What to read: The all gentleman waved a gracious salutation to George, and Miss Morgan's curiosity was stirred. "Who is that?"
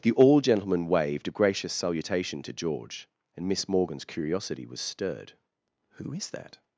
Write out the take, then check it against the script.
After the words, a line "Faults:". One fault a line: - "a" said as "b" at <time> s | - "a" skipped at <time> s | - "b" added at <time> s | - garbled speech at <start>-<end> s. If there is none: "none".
The all gentleman waved a gracious salutation to George, and Miss Morgan's curiosity was stirred. "Who is that?"
Faults:
none